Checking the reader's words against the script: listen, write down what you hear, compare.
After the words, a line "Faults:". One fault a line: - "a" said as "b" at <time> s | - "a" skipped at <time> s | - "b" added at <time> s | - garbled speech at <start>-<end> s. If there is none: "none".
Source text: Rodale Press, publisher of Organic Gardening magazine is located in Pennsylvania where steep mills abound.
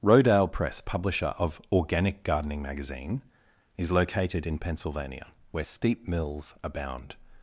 Rodale Press, publisher of Organic Gardening magazine is located in Pennsylvania where steep mills abound.
Faults:
none